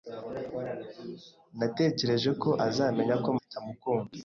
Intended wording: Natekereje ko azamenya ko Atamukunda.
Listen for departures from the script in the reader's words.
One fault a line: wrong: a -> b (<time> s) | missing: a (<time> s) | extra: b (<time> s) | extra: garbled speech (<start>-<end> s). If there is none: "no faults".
no faults